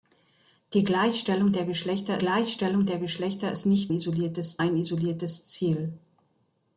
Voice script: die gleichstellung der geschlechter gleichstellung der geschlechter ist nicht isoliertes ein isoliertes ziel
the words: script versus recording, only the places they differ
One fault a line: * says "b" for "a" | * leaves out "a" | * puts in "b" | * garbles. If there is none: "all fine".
all fine